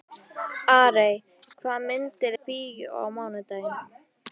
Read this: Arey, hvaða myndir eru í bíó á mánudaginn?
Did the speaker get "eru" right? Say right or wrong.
wrong